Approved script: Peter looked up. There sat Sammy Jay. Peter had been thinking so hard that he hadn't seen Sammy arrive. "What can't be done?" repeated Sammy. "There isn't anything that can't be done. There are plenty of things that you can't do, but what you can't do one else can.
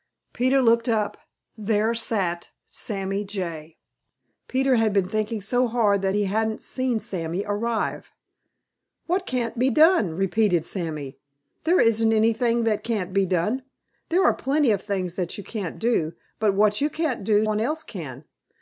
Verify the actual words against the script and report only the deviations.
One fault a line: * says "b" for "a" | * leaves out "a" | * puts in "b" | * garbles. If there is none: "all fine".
all fine